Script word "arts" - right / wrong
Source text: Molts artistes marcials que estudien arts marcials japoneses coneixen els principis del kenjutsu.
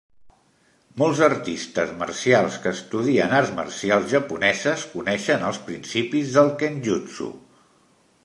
right